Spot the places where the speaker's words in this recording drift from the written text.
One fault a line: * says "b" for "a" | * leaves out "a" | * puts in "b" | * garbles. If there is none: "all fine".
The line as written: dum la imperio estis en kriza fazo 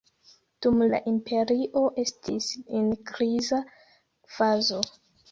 all fine